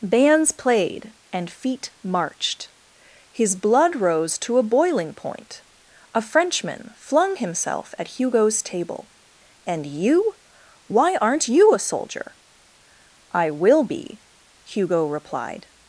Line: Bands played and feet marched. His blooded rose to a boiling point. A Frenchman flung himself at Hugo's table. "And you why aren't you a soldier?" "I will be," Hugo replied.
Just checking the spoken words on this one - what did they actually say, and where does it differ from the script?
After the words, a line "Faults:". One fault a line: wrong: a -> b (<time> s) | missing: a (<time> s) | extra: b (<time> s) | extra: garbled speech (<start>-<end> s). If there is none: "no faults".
Bands played and feet marched. His blood rose to a boiling point. A Frenchman flung himself at Hugo's table. "And you why aren't you a soldier?" "I will be," Hugo replied.
Faults:
wrong: blooded -> blood (3.5 s)